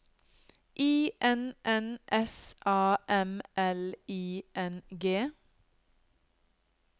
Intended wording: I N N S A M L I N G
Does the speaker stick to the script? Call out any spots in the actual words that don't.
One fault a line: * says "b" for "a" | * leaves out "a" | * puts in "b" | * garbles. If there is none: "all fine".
all fine